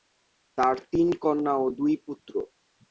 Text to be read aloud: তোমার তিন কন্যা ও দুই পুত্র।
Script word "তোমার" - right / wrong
wrong